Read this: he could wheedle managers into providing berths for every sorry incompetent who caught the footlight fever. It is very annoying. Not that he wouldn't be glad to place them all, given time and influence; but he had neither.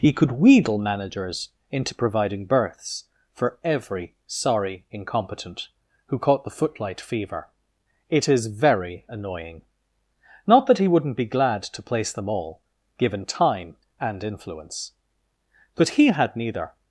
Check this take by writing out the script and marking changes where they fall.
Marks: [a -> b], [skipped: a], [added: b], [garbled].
he could wheedle managers into providing berths for every sorry incompetent who caught the footlight fever. It is very annoying. Not that he wouldn't be glad to place them all, given time and influence; but he had neither.